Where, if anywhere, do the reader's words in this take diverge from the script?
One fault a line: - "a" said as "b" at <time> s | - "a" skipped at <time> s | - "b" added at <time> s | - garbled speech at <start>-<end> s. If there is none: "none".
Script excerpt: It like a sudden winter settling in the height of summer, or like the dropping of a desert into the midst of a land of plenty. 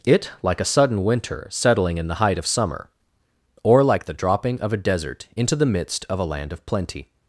none